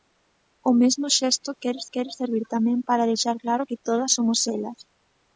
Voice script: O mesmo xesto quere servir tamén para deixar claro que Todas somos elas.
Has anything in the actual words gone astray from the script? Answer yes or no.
yes